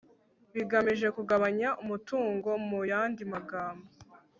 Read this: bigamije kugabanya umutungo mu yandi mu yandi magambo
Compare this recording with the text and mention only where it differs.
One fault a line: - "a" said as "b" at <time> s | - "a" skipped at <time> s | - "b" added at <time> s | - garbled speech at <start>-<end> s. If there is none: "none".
- "mu yandi" skipped at 3.2 s